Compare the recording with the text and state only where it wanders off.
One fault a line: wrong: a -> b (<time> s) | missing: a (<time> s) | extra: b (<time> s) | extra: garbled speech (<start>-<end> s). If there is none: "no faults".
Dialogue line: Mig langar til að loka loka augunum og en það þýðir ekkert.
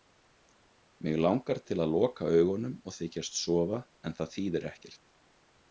missing: loka (2.3 s)
extra: þykjast sofa (3.0 s)